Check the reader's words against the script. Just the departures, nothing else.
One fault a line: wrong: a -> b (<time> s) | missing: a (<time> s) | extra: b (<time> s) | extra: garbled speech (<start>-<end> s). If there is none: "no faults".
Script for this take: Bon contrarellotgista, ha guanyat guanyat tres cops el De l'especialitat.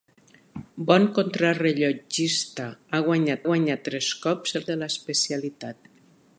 no faults